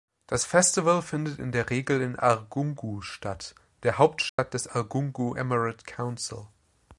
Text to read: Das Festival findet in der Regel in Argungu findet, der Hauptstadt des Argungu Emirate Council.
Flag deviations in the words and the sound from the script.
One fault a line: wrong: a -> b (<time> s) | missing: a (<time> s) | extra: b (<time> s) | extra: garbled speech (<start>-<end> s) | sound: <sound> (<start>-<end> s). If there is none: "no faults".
wrong: findet -> statt (3.0 s)
sound: dropout (4.3-4.4 s)